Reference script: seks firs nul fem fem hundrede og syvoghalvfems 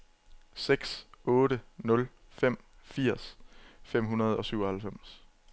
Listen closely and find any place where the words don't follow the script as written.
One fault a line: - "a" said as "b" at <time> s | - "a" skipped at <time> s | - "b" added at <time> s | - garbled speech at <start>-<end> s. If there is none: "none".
- "firs" said as "otte" at 1.2 s
- "firs" added at 2.8 s